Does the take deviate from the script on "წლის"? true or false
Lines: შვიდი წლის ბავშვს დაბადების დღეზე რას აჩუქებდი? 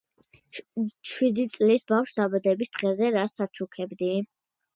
false